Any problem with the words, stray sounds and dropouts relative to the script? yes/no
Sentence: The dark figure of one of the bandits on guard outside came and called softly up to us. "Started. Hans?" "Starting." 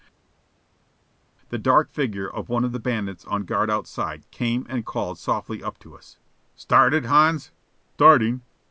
no